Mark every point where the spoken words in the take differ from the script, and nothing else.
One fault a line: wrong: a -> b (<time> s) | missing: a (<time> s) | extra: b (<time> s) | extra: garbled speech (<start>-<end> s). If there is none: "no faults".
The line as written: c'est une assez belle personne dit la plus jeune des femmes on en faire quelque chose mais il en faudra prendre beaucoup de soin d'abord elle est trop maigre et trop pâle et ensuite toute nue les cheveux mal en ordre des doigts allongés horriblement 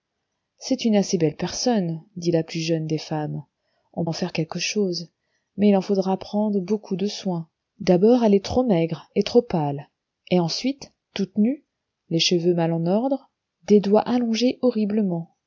no faults